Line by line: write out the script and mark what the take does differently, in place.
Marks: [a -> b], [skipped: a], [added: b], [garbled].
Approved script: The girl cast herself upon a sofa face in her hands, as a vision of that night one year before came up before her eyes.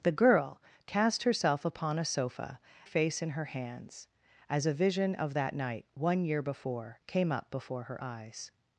The girl cast herself upon a sofa face in her hands, as a vision of that night one year before came up before her eyes.